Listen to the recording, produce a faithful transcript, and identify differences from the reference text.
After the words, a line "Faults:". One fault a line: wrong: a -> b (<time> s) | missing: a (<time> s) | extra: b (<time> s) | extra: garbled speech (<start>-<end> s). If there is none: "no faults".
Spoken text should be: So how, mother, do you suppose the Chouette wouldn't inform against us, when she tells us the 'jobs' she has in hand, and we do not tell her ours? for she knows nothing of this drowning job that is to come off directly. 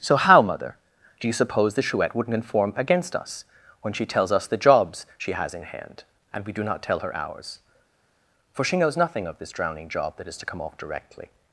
So how, mother, do you suppose the Chouette wouldn't inform against us, when she tells us the 'jobs' she has in hand, and we do not tell her ours? for she knows nothing of this drowning job that is to come off directly.
Faults:
no faults